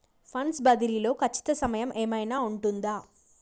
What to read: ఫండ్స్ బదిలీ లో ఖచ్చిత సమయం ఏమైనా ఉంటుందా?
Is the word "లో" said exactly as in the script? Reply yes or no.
yes